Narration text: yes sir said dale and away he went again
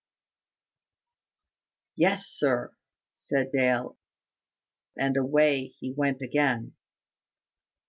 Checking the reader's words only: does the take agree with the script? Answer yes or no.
yes